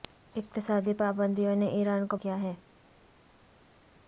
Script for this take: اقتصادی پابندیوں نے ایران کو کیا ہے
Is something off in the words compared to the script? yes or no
no